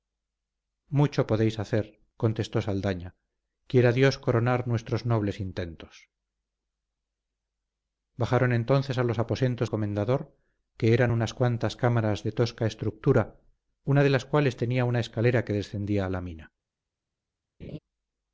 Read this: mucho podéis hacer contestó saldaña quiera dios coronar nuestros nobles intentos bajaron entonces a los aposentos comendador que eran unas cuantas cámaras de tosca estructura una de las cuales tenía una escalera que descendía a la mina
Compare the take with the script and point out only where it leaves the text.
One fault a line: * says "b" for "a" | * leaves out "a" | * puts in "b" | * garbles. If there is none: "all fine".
all fine